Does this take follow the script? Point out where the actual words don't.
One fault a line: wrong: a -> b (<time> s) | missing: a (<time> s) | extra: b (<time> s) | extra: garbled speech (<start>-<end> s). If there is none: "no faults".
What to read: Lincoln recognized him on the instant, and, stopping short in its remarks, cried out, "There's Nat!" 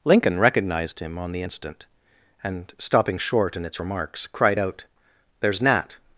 no faults